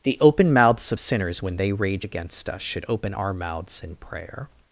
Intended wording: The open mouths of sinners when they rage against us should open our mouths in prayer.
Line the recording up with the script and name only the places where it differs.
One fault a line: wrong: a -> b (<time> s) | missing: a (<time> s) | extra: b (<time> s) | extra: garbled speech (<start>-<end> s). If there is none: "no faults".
no faults